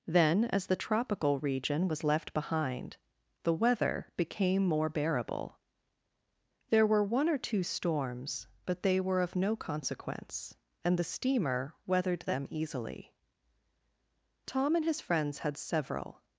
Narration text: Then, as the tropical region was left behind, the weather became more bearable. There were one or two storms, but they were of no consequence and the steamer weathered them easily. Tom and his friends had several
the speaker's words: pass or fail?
pass